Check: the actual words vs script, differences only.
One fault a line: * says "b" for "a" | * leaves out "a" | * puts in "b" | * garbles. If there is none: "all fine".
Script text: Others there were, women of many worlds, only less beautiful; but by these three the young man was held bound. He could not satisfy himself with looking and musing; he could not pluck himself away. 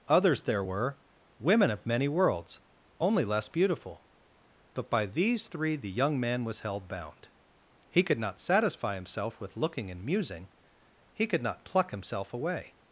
all fine